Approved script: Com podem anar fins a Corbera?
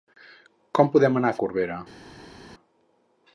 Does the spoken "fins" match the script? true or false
false